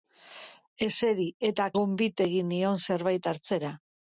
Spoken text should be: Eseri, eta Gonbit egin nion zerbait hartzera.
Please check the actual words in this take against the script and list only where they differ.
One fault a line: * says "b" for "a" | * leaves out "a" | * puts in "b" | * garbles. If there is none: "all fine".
all fine